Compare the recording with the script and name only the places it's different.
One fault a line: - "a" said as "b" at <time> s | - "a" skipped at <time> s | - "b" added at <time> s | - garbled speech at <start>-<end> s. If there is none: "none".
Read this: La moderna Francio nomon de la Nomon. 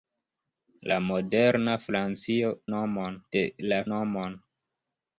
none